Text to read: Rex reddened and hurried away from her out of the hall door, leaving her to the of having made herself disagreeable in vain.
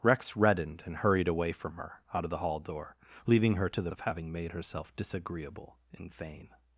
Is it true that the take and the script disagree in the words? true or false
false